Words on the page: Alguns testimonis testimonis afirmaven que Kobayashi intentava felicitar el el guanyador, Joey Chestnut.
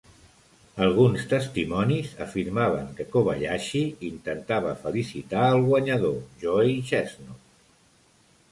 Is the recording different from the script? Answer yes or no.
yes